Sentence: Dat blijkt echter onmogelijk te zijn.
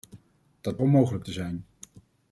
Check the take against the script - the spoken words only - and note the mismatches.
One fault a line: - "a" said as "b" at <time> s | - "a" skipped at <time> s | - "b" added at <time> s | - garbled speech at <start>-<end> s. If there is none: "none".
- "blijkt echter" skipped at 0.8 s